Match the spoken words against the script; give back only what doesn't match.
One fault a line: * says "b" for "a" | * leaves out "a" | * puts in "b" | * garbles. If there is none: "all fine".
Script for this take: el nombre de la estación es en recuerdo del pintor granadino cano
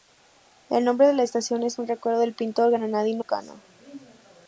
all fine